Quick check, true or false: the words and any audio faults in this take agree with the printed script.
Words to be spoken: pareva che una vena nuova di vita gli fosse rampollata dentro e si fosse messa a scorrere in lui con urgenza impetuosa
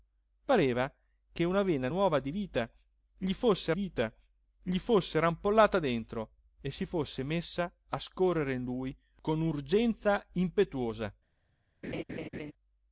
false